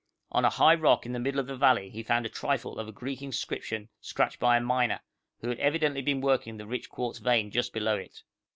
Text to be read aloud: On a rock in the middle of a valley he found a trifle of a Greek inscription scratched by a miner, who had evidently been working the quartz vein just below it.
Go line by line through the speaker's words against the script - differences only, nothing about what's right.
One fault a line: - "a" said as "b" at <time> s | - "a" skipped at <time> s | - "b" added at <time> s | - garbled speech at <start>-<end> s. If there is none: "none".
- "high" added at 0.5 s
- "a" said as "the" at 1.4 s
- "rich" added at 6.7 s